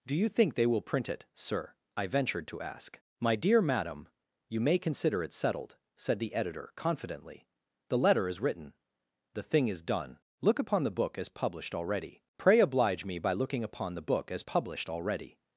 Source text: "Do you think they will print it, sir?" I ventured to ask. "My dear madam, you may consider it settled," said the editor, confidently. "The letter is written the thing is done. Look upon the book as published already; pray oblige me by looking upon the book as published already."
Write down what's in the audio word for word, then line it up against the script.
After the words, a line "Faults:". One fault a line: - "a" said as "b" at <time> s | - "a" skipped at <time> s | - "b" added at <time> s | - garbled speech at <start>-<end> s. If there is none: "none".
"Do you think they will print it, sir?" I ventured to ask. "My dear madam, you may consider it settled," said the editor, confidently. "The letter is written the thing is done. Look upon the book as published already; pray oblige me by looking upon the book as published already."
Faults:
none